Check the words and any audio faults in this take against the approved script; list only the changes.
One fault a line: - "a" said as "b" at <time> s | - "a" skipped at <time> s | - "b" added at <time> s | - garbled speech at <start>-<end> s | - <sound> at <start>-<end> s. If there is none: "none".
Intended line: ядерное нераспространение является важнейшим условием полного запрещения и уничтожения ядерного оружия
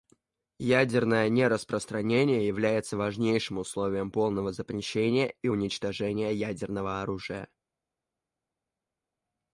none